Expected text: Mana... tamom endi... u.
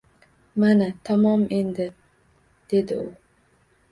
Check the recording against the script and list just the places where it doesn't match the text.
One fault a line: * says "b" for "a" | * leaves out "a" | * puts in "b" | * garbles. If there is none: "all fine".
* puts in "dedi"